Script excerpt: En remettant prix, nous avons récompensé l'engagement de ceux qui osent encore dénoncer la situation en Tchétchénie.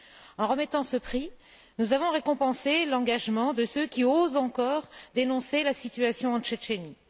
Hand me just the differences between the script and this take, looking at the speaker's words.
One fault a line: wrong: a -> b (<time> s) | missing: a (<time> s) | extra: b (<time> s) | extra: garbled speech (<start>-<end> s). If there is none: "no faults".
extra: ce (0.8 s)